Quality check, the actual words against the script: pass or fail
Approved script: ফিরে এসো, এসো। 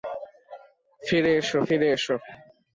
fail